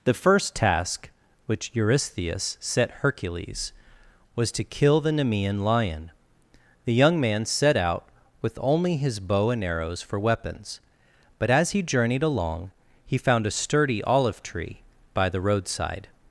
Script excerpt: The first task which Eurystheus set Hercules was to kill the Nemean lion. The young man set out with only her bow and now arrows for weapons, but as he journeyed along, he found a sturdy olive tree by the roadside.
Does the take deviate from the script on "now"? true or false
true